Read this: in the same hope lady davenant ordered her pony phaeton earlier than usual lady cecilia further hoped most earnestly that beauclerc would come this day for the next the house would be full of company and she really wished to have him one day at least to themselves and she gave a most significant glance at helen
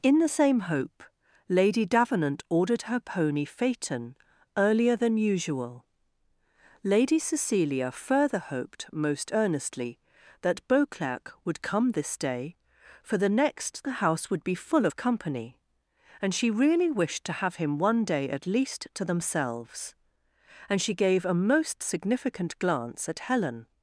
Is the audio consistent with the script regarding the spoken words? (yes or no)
yes